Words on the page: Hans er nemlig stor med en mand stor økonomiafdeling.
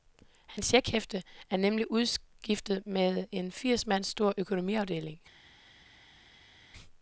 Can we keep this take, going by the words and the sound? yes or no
no